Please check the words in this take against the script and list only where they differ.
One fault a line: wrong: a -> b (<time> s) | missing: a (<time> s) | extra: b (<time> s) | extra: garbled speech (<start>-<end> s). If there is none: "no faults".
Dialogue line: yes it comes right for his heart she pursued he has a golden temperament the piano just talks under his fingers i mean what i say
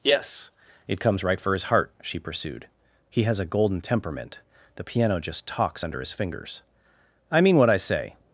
no faults